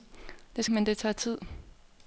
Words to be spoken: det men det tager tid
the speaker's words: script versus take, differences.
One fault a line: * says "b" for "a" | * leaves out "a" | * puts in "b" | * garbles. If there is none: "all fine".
all fine